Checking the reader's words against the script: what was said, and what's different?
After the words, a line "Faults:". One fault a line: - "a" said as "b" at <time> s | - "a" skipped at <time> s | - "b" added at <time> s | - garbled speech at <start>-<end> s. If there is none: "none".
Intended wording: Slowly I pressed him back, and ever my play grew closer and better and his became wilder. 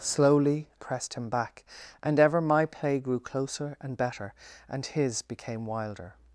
Slowly pressed him back, and ever my play grew closer and better and his became wilder.
Faults:
- "I" skipped at 0.7 s